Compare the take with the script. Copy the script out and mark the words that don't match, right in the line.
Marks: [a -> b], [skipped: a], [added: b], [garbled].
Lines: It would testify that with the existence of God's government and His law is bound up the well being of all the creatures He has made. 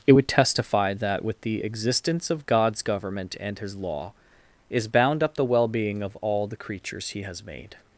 It would testify that with the existence of God's government and His law is bound up the well being of all the creatures He has made.